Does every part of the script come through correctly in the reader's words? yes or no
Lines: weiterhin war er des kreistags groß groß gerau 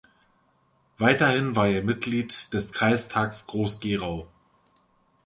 no